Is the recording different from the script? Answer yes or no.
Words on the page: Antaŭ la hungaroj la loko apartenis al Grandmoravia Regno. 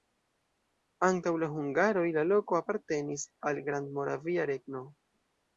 no